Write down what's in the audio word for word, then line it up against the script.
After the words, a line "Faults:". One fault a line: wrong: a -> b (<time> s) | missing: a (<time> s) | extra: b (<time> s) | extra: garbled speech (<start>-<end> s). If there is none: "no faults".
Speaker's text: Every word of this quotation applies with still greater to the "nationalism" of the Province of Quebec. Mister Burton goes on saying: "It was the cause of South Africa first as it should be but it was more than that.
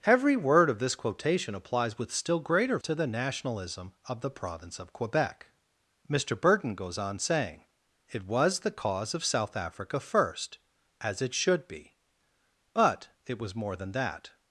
Every word of this quotation applies with still greater to the "nationalism" of the Province of Quebec. Mister Burton goes on saying: "It was the cause of South Africa first as it should be but it was more than that.
Faults:
no faults